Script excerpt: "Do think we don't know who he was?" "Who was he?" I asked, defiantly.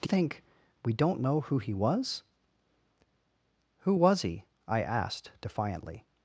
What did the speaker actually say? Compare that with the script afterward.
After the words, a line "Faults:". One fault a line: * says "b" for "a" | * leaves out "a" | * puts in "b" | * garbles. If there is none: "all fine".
"Do think we don't know who he was?" "Who was he?" I asked, defiantly.
Faults:
all fine